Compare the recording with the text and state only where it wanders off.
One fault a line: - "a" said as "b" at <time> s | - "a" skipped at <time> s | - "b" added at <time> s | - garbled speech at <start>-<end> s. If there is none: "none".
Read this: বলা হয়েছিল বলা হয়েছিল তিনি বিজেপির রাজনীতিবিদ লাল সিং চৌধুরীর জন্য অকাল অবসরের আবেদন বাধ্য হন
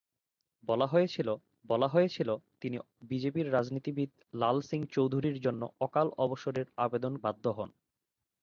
none